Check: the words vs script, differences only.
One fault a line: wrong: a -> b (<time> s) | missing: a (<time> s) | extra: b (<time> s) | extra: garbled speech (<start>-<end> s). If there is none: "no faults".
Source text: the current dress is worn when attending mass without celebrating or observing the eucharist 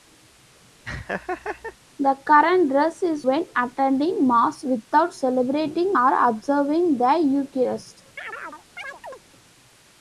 missing: worn (3.3 s)